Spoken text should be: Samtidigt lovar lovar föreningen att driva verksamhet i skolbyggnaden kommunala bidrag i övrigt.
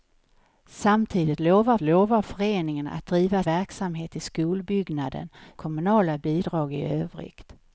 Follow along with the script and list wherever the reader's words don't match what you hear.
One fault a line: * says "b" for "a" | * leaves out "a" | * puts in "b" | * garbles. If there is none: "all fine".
all fine